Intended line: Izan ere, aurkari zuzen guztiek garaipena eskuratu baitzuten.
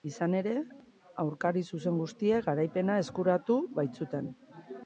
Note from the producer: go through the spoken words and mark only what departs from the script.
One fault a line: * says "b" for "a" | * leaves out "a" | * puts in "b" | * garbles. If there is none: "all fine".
all fine